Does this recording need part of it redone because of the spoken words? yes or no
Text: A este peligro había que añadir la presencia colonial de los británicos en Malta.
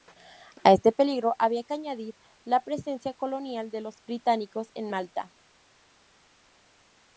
no